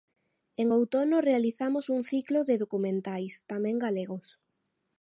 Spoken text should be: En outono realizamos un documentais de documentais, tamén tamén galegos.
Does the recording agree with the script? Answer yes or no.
no